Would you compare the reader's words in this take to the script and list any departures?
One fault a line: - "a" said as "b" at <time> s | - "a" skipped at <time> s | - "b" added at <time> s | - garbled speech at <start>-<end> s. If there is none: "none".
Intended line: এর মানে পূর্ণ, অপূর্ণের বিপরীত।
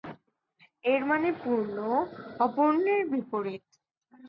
none